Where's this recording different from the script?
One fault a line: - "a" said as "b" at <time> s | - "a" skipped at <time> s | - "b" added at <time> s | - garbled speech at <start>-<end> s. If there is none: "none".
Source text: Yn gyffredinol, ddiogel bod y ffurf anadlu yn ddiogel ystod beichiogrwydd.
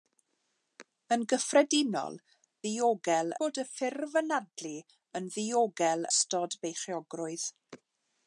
none